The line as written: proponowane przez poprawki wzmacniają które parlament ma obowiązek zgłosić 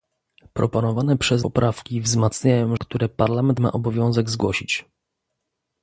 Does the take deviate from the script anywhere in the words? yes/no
no